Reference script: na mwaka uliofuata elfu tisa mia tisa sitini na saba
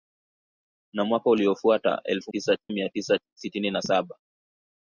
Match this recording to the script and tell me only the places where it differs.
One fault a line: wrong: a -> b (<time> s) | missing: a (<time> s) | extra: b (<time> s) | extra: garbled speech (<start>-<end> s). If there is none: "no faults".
no faults